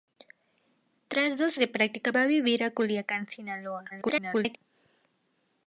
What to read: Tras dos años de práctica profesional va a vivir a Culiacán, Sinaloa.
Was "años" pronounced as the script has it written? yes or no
no